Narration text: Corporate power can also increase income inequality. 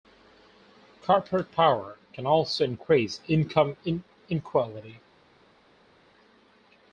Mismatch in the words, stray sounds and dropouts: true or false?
false